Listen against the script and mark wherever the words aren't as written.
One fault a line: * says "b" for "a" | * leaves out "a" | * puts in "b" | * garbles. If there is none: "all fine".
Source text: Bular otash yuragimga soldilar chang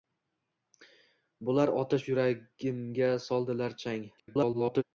* garbles